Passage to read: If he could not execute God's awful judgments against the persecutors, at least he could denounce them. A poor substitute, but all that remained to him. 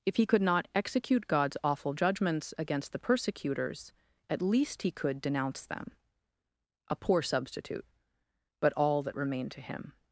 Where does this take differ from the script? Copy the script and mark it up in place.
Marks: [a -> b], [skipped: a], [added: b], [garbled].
If he could not execute God's awful judgments against the persecutors, at least he could denounce them. A poor substitute, but all that remained to him.